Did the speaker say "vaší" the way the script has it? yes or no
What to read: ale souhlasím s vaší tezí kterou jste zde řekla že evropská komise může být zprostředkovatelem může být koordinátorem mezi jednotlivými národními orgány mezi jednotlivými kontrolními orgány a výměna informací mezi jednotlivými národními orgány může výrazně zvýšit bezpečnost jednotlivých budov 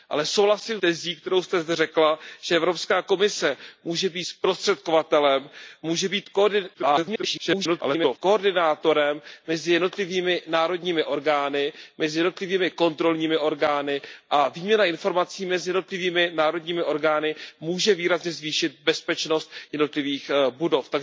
no